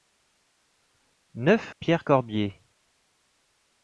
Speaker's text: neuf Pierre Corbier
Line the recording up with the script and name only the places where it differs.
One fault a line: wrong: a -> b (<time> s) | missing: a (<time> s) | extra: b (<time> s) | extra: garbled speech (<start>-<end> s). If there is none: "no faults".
no faults